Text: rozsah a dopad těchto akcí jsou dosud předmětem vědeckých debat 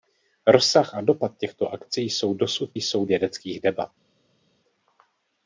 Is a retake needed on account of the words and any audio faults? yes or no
yes